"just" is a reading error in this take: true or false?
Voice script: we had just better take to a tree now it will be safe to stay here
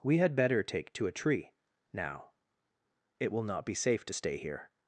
true